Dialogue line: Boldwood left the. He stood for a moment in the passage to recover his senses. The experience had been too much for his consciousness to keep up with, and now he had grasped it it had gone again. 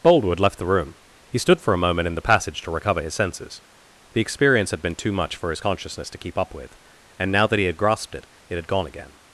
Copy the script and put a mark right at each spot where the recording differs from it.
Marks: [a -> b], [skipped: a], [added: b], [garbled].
Boldwood left the. [added: room] He stood for a moment in the passage to recover his senses. The experience had been too much for his consciousness to keep up with, and now [added: that] he had grasped it it had gone again.